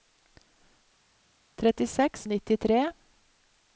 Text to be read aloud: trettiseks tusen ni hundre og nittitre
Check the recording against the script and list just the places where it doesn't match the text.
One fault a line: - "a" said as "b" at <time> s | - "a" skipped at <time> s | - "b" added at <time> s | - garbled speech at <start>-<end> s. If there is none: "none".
- "tusen ni hundre" skipped at 2.2 s